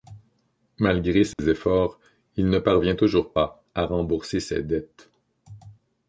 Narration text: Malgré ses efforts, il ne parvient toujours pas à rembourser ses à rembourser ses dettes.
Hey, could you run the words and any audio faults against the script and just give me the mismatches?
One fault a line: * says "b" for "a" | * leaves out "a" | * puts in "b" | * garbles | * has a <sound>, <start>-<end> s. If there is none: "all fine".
* has a dropout, 1.3-1.4 s
* leaves out "à rembourser ses"